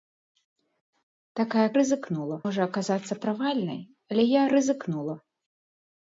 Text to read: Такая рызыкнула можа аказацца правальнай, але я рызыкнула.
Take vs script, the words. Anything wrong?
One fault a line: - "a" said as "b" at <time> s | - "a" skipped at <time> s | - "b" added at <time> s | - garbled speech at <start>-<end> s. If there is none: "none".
none